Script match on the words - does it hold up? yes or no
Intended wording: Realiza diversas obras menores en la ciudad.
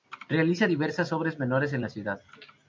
yes